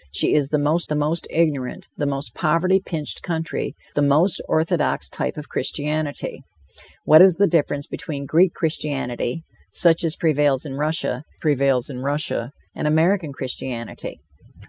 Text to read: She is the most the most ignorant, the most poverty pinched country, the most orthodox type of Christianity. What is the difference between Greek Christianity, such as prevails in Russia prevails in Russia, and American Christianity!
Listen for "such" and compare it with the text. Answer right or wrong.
right